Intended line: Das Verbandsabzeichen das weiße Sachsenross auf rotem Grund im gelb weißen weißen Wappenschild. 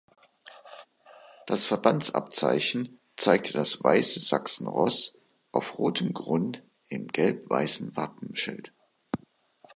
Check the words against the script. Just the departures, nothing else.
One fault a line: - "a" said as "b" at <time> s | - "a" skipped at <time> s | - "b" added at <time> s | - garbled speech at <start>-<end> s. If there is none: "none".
- "zeigte" added at 3.2 s
- "weißen" skipped at 8.0 s